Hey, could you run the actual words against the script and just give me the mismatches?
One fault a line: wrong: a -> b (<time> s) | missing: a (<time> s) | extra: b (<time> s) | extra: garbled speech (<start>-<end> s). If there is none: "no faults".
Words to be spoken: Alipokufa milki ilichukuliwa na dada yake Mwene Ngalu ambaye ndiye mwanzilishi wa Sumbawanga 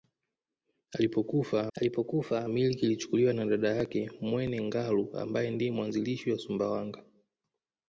extra: alipokufa (1.7 s)